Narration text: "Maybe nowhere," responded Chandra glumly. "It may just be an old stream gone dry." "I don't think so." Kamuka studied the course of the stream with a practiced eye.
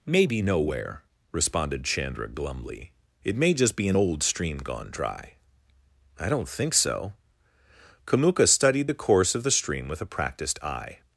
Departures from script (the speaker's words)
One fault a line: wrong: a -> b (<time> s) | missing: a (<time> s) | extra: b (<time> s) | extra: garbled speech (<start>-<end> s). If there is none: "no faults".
no faults